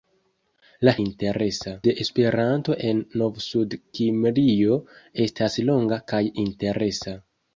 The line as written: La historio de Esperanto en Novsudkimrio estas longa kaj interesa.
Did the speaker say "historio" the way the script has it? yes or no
no